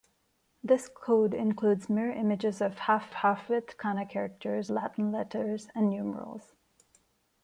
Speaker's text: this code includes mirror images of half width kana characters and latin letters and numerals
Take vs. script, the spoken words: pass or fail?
fail